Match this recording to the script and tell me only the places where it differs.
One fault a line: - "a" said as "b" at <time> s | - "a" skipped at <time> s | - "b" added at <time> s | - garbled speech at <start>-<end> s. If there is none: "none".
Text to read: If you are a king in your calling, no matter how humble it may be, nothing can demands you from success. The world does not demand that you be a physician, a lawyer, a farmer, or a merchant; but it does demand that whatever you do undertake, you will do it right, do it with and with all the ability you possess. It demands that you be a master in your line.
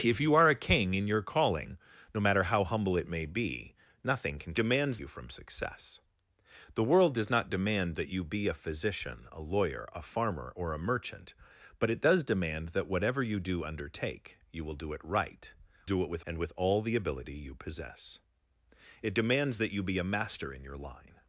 none